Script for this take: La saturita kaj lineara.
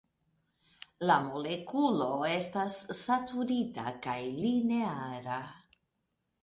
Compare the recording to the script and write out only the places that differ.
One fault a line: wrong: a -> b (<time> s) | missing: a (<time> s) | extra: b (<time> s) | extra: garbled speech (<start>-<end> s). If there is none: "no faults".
extra: molekulo estas (1.2 s)